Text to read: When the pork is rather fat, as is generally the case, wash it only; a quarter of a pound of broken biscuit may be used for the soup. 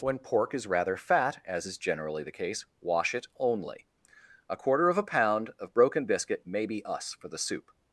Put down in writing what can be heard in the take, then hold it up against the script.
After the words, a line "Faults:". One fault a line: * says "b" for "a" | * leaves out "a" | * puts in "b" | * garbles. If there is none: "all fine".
When pork is rather fat, as is generally the case, wash it only; a quarter of a pound of broken biscuit may be us for the soup.
Faults:
* leaves out "the"
* says "us" for "used"